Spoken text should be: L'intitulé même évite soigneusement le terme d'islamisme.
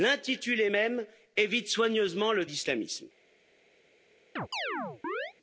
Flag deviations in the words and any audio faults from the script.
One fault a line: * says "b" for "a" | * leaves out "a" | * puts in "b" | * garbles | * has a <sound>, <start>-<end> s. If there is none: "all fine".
* leaves out "terme"
* has a chirp, 4.4-5.3 s